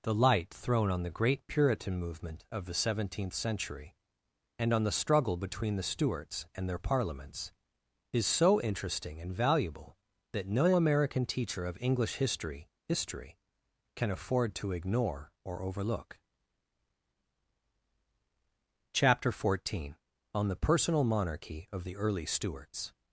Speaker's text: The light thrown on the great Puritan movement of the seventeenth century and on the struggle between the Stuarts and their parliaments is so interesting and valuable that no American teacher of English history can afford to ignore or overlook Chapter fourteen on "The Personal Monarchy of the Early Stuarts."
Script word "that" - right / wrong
right